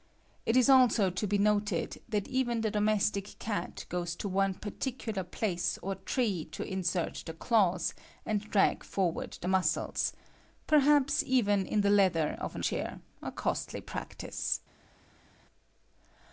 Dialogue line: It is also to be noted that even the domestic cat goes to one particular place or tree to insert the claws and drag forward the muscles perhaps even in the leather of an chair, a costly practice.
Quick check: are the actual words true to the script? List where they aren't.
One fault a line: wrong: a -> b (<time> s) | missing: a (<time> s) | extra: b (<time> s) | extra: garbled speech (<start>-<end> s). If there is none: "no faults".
no faults